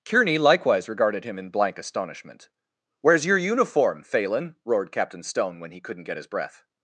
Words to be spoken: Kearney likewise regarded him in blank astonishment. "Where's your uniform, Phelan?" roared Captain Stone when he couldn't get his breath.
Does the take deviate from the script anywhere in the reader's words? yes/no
no